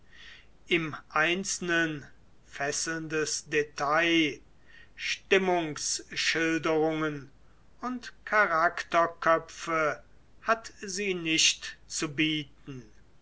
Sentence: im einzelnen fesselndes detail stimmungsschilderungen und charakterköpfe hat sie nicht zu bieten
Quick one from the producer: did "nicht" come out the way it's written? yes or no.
yes